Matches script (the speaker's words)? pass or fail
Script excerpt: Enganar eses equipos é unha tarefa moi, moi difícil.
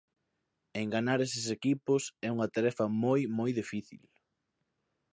pass